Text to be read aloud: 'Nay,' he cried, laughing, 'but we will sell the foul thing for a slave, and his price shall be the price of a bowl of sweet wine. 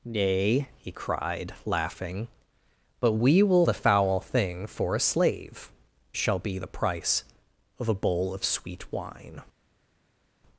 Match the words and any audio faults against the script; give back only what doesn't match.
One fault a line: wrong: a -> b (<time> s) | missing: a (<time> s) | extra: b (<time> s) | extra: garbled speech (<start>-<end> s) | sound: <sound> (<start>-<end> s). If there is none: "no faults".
missing: sell (3.7 s)
missing: and his price (5.7 s)